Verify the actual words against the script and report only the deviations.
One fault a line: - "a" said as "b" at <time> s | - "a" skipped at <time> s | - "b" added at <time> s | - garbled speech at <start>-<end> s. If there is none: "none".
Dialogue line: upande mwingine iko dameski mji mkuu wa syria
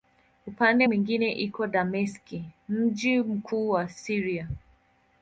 none